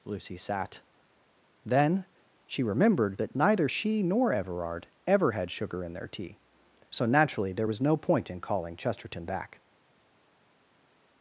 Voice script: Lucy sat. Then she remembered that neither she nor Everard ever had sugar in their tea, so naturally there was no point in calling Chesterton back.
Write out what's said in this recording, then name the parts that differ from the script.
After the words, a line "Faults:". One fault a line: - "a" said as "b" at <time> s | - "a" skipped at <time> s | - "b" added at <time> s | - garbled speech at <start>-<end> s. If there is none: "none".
Lucy sat. Then she remembered that neither she nor Everard ever had sugar in their tea, so naturally there was no point in calling Chesterton back.
Faults:
none